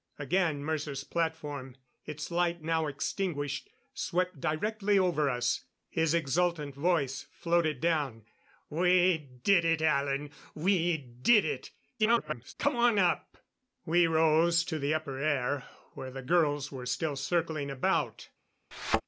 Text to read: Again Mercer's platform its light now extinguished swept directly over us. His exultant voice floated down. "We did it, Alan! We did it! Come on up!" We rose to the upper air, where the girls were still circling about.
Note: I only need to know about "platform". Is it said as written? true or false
true